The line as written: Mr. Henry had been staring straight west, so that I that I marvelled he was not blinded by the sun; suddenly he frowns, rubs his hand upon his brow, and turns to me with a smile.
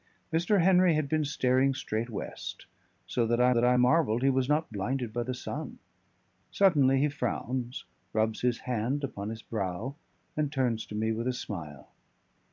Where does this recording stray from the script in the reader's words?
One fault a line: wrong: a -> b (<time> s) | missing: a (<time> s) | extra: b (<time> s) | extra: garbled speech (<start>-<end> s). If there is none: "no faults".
no faults